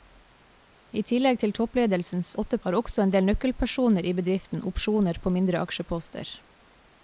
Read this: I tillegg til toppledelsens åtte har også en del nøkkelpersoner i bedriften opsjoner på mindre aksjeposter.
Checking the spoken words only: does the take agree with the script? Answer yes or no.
yes